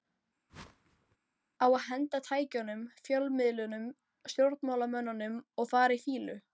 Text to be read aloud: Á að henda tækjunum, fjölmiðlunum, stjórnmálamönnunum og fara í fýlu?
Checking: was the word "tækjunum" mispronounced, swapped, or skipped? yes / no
no